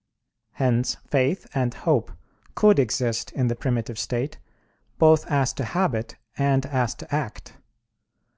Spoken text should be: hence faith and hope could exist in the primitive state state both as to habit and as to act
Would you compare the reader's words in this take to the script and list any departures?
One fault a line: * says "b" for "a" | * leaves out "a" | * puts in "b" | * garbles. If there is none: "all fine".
* leaves out "state"